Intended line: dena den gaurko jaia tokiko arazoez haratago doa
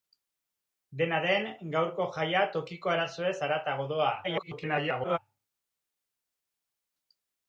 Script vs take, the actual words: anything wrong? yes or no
yes